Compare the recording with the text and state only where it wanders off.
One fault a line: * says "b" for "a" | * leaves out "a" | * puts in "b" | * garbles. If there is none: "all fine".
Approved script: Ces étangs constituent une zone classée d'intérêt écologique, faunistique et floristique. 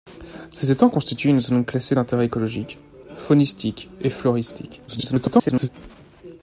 * garbles